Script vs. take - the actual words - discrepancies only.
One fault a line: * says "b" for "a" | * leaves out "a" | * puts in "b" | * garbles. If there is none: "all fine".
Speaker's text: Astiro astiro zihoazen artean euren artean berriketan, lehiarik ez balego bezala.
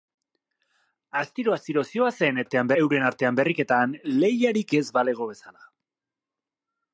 all fine